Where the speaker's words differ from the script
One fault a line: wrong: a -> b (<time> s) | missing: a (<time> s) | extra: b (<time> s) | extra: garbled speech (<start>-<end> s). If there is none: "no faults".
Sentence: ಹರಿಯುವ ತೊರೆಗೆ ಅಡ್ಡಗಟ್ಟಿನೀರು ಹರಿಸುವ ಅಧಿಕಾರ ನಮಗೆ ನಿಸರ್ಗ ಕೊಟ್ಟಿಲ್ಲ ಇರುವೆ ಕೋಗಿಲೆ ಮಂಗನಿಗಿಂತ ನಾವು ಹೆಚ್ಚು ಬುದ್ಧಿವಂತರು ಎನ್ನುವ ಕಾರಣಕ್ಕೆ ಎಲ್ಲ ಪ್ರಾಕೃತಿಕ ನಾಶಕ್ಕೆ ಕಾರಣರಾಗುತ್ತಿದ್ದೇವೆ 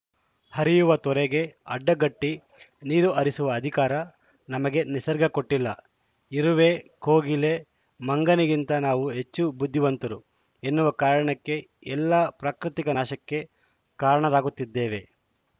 no faults